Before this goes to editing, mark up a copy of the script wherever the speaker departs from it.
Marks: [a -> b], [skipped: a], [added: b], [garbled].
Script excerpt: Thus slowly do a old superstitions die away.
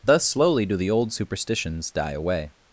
Thus slowly do [a -> the] old superstitions die away.